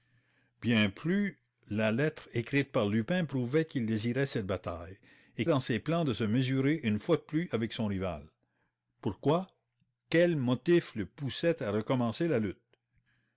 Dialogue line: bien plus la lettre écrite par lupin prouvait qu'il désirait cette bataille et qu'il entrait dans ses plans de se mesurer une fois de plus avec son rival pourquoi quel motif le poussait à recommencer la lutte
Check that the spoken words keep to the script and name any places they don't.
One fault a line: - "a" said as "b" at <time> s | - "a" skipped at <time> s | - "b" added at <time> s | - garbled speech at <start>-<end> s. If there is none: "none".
- "qu'il entrait" skipped at 5.5 s